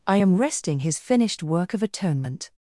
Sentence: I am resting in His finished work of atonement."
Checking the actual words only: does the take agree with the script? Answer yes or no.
no